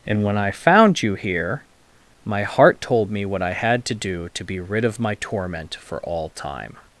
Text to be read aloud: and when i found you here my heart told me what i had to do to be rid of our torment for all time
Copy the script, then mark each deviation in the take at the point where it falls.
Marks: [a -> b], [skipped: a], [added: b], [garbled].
and when i found you here my heart told me what i had to do to be rid of [our -> my] torment for all time